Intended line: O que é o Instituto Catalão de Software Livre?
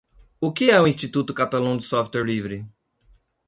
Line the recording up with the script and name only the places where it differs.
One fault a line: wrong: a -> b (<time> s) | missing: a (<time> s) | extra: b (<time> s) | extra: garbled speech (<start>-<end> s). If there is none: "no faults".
no faults